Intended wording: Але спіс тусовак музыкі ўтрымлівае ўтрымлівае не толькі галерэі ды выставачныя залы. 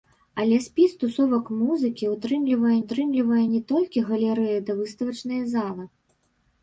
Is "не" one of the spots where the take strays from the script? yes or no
no